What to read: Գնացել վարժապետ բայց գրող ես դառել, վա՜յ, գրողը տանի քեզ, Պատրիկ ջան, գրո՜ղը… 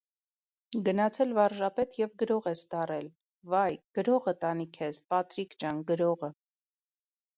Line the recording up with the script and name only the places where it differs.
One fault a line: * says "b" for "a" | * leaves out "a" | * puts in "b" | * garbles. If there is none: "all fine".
* says "և" for "բայց"